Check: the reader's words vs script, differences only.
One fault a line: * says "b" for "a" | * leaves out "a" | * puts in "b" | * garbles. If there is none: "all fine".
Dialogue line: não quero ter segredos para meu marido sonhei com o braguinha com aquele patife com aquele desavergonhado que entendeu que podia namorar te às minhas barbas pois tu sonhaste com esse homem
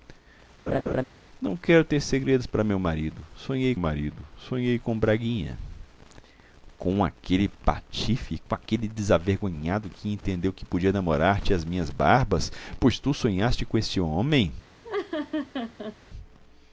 * puts in "marido sonhei"